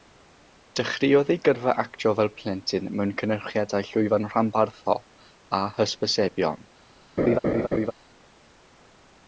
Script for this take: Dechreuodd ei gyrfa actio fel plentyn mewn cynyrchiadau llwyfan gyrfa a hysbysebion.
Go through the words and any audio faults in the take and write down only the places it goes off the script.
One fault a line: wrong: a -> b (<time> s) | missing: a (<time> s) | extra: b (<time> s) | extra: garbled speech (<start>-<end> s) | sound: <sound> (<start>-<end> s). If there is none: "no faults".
wrong: gyrfa -> rhanbarthol (4.3 s)
sound: laugh (7.2-7.9 s)